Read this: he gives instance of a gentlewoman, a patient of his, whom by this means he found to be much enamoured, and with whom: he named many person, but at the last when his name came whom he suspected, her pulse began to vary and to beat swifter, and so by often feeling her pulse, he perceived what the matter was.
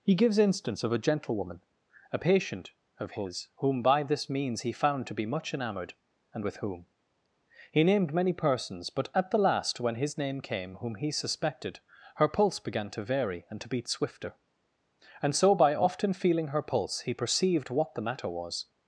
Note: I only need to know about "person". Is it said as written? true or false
false